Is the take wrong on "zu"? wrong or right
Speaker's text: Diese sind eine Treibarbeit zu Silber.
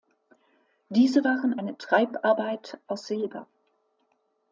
wrong